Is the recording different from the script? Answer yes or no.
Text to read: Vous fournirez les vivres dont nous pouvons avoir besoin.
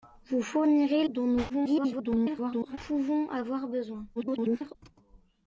yes